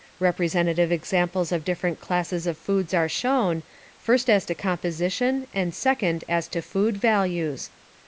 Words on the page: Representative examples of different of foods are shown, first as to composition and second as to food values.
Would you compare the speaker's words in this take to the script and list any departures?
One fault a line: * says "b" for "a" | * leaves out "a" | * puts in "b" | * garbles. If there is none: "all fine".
* puts in "classes"